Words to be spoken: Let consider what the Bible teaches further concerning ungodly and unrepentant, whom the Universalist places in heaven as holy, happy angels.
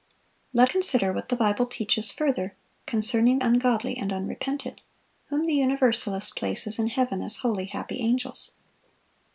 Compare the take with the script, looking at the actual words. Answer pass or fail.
pass